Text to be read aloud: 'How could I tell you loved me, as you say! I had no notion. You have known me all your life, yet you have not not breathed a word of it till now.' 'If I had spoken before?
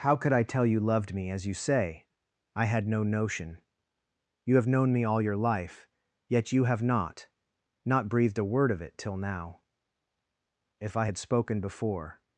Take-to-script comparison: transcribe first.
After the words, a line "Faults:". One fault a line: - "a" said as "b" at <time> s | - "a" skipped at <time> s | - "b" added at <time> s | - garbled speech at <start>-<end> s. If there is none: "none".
'How could I tell you loved me, as you say! I had no notion. You have known me all your life, yet you have not not breathed a word of it till now.' 'If I had spoken before?
Faults:
none